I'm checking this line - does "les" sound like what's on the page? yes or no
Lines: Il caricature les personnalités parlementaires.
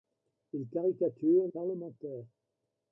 no